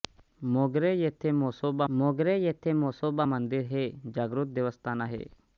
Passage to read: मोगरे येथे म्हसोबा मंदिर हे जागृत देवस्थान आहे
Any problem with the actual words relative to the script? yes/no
yes